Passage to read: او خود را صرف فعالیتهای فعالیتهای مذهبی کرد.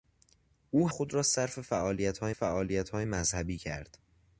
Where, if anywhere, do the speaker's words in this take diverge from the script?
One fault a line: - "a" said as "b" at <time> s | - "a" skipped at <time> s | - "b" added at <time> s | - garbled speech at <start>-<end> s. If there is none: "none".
none